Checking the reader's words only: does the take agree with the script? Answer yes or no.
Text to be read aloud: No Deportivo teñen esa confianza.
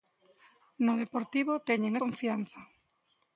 no